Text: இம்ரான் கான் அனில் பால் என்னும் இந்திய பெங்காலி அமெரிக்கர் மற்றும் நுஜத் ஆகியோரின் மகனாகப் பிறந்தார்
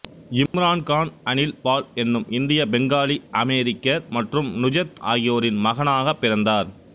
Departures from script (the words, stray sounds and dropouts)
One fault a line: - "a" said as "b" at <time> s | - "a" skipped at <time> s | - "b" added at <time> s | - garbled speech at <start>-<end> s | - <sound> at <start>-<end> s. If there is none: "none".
- dropout at 0.5-0.5 s